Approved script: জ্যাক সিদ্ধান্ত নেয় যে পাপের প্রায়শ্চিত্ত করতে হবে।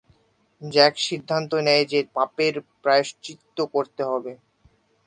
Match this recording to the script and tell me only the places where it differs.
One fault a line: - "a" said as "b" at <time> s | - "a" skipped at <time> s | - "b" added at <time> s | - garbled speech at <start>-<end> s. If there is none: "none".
none